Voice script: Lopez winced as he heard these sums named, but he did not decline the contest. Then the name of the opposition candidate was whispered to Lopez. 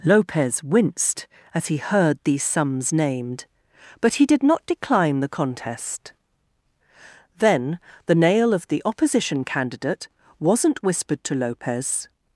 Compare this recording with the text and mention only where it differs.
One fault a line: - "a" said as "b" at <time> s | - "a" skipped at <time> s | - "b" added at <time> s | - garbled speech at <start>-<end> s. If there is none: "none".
- "name" said as "nail" at 8.2 s
- "was" said as "wasn't" at 10.4 s